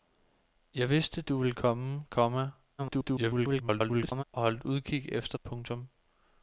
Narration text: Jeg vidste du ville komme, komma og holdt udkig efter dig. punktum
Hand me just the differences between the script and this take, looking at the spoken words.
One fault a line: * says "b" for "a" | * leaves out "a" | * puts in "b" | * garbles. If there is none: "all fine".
* garbles
* leaves out "dig"